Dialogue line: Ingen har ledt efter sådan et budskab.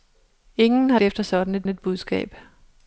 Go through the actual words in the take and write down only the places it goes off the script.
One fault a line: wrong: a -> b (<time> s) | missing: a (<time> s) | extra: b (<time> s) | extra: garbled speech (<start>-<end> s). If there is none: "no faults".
missing: ledt (1.0 s)
extra: et (1.7 s)